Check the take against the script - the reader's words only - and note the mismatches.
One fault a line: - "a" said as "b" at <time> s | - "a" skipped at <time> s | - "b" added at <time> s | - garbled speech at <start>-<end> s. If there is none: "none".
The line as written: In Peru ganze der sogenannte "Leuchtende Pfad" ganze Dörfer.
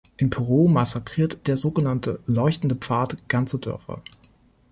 - "ganze" said as "massakriert" at 0.7 s